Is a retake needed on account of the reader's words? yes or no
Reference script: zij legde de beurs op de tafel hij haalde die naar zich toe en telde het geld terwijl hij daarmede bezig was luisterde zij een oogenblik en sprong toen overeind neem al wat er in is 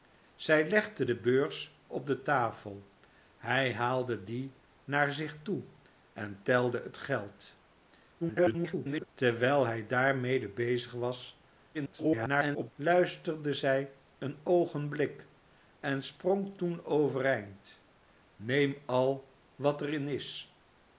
yes